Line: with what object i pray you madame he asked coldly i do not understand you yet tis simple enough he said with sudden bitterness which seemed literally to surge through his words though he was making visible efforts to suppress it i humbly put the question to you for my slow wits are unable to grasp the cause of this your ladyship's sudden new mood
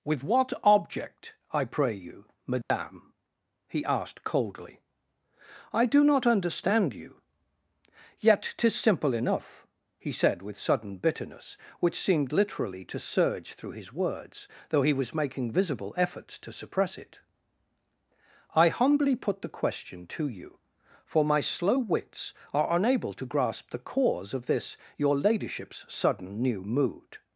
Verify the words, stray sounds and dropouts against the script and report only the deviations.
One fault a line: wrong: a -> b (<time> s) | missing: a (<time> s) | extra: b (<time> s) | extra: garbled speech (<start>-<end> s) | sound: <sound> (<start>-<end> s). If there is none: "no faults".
sound: dropout (2.6-2.7 s)